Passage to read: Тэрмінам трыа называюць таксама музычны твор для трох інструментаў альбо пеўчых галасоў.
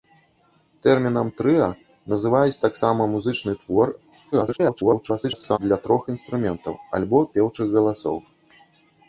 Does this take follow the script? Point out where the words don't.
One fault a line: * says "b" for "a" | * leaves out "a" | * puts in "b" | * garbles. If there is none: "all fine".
* garbles